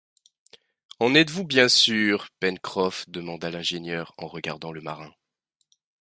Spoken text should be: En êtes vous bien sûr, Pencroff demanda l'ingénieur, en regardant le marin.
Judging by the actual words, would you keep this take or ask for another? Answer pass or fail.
pass